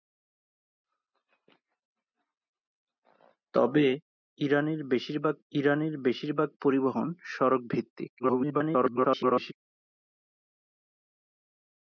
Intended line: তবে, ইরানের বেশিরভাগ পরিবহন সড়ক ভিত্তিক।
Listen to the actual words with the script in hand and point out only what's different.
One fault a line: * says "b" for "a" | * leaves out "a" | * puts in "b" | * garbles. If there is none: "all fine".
* puts in "ইরানের বেশিরভাগ"
* garbles